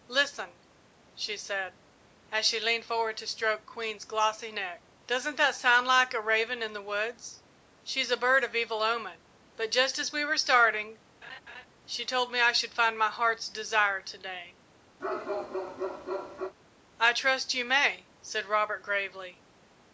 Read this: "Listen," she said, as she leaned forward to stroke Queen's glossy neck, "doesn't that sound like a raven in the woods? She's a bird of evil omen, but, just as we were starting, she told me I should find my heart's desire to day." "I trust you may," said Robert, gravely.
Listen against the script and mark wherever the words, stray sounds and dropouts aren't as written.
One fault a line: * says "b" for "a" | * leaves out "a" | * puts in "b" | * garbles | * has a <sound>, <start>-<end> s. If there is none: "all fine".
* has a laugh, 11.2-11.7 s
* has a bark, 15.0-16.5 s